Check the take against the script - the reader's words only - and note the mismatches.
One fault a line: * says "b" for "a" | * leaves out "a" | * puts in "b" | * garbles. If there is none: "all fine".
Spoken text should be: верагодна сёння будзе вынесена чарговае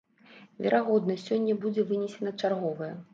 all fine